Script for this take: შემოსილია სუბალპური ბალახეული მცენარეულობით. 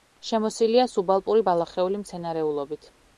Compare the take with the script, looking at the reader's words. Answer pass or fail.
pass